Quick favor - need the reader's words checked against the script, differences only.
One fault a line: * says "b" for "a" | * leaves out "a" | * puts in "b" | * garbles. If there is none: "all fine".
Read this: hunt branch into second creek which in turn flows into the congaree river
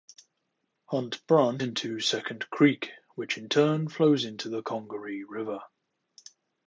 all fine